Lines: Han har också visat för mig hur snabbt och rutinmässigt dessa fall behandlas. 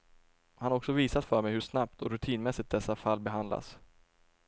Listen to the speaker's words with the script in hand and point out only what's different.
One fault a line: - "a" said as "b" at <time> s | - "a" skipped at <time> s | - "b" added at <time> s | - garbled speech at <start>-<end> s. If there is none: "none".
none